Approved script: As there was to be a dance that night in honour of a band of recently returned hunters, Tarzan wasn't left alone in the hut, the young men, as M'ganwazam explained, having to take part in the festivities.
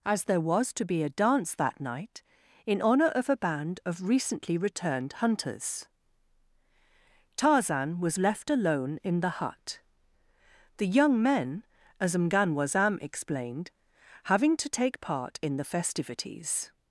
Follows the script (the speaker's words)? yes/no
no